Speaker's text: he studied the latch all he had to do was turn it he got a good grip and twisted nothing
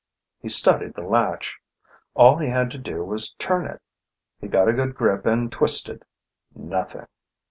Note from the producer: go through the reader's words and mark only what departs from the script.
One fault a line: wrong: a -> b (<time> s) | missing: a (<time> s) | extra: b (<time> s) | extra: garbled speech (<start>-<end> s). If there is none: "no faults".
no faults